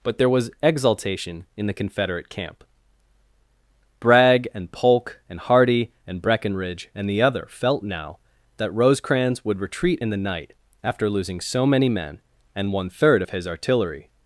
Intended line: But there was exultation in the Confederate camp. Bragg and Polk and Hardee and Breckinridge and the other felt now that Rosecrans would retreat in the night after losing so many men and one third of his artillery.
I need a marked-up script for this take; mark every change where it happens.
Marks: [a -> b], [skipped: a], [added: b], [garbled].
But there was exultation in the Confederate camp. Bragg and Polk and Hardee and Breckinridge and the other felt now that Rosecrans would retreat in the night after losing so many men and one third of his artillery.